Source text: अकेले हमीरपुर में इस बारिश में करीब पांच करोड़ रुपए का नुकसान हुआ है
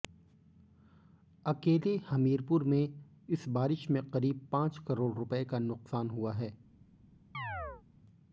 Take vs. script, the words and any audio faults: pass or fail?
fail